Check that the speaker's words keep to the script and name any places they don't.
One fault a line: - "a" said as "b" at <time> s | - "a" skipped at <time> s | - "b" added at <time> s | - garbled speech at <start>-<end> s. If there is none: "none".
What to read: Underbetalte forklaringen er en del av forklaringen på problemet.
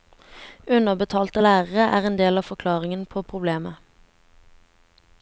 - "forklaringen" said as "lærere" at 1.4 s